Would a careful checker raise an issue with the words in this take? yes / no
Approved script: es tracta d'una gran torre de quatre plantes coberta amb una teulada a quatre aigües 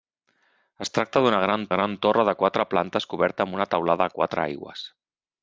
yes